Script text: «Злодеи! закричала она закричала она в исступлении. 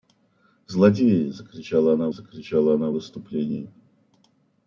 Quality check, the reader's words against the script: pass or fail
pass